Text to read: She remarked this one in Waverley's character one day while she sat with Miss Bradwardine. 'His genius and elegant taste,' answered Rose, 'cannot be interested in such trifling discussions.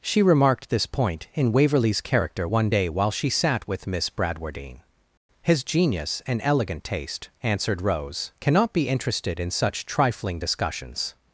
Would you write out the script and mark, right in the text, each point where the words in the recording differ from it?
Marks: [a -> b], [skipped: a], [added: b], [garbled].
She remarked this [one -> point] in Waverley's character one day while she sat with Miss Bradwardine. 'His genius and elegant taste,' answered Rose, 'cannot be interested in such trifling discussions.